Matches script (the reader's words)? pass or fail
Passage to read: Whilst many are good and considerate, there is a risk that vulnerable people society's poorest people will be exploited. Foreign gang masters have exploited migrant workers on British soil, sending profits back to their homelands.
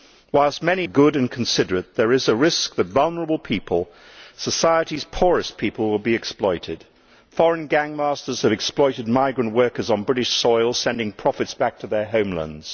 pass